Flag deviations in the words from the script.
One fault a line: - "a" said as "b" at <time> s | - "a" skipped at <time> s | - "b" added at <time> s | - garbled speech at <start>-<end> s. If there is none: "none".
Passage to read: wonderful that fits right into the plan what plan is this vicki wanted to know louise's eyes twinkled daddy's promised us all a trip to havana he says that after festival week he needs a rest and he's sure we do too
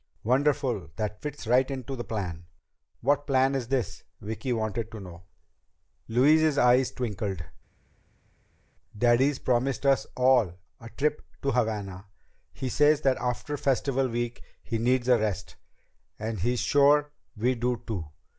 none